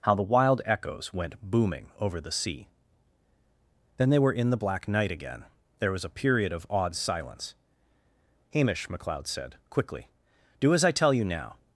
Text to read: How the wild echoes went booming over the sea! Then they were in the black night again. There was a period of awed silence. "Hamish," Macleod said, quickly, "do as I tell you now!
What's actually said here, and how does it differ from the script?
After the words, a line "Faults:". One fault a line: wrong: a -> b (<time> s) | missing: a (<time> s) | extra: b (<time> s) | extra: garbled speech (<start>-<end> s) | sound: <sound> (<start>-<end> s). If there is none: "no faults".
How the wild echoes went booming over the sea! Then they were in the black night again. There was a period of awed silence. "Hamish," Macleod said, quickly, "do as I tell you now!
Faults:
no faults